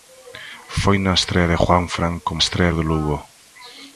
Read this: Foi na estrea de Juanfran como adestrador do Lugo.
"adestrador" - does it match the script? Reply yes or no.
no